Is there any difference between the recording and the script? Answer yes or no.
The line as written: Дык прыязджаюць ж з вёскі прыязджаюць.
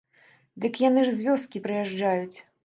yes